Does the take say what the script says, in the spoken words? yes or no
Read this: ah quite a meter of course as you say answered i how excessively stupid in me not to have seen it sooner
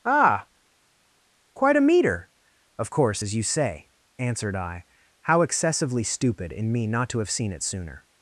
yes